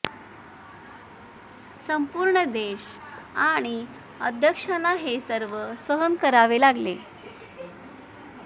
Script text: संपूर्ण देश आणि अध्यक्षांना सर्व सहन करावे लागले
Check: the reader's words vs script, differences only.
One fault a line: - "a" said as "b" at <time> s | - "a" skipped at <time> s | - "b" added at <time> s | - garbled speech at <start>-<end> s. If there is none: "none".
- "हे" added at 4.9 s